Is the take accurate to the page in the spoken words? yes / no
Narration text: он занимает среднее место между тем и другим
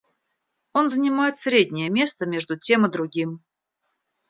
yes